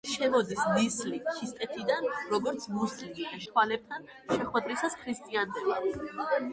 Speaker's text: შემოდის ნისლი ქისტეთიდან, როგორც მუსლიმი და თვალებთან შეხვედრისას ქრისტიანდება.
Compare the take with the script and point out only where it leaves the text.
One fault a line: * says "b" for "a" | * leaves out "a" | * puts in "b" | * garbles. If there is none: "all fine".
all fine